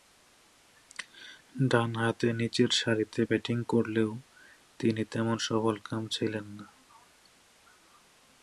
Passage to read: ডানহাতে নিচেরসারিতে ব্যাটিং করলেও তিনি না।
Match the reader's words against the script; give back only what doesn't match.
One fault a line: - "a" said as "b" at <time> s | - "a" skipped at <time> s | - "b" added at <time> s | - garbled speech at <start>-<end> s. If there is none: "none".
- "তেমন সফলকাম ছিলেন" added at 5.0 s